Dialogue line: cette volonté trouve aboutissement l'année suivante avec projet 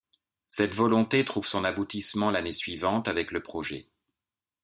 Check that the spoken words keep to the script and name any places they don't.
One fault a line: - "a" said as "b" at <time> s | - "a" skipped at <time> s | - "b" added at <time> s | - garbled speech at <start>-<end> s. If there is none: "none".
- "son" added at 1.4 s
- "le" added at 3.3 s